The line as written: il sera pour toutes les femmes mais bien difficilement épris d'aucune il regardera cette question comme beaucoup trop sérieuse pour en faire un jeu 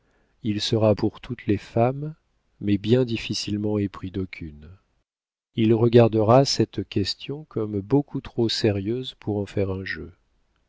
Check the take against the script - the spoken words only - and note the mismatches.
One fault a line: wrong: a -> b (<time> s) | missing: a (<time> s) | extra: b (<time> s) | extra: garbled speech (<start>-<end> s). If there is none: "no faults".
no faults